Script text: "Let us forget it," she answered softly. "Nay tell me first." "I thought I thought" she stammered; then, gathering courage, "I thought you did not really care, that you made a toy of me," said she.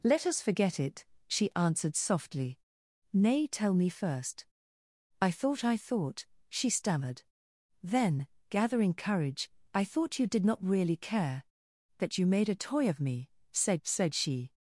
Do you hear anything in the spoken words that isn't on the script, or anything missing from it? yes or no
yes